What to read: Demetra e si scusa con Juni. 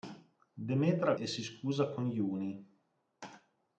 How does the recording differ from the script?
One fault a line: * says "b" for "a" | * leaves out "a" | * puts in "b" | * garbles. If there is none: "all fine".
all fine